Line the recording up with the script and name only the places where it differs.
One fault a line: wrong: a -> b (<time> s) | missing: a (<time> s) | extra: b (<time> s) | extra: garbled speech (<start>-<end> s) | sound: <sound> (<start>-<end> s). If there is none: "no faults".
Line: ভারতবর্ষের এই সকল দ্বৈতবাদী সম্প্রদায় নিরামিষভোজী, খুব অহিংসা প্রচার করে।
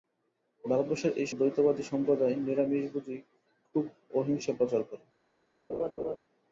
missing: সকল (1.3 s)
sound: laugh (5.7-6.2 s)